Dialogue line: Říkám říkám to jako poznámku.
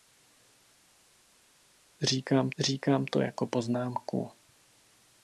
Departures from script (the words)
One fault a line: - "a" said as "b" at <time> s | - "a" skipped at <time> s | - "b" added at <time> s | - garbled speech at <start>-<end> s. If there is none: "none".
none